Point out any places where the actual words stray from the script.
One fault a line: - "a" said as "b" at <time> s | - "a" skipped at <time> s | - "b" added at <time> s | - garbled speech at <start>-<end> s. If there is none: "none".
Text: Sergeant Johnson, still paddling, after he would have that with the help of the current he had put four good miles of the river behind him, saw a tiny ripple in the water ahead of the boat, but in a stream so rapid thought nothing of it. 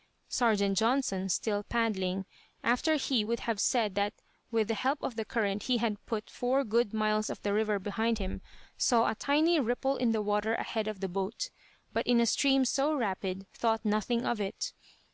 - "said" added at 3.6 s